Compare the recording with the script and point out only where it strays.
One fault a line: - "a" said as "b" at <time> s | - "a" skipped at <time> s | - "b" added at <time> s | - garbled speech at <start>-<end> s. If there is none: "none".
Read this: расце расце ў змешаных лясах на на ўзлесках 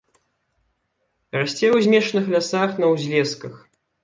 - "расце" skipped at 1.7 s
- "на" skipped at 2.9 s